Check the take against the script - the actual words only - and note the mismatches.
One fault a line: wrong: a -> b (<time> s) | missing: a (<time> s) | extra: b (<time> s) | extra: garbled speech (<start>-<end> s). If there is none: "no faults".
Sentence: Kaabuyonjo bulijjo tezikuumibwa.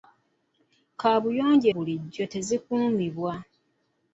no faults